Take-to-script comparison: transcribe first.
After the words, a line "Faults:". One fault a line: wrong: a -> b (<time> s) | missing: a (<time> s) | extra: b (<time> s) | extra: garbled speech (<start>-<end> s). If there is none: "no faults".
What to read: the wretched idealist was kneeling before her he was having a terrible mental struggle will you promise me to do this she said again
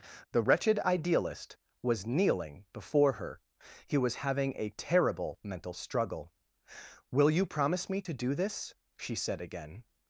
the wretched idealist was kneeling before her he was having a terrible mental struggle will you promise me to do this she said again
Faults:
no faults